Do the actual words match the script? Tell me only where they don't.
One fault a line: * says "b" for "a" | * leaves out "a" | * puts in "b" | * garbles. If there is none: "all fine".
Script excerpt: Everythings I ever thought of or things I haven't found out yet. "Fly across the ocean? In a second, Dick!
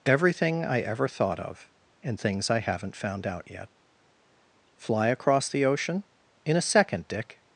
* says "Everything" for "Everythings"
* says "and" for "or"